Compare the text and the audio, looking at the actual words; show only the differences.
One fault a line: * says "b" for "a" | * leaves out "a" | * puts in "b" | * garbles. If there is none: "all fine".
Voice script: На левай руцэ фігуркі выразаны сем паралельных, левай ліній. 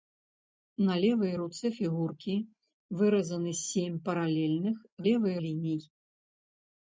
all fine